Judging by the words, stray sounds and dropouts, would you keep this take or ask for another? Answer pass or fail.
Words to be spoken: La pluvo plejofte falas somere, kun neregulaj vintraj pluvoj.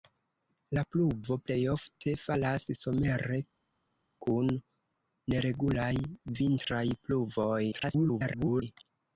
fail